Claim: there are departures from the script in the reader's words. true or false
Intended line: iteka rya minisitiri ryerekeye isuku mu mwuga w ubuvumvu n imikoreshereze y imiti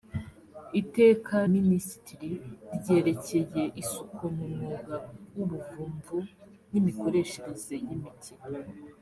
true